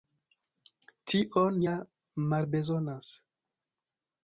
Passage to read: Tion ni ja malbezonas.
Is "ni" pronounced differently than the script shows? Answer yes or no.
yes